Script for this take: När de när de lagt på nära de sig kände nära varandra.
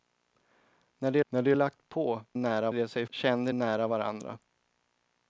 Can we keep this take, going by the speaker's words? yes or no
yes